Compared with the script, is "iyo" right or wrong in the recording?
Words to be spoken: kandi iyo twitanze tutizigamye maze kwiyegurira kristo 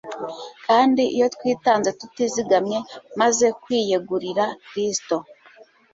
right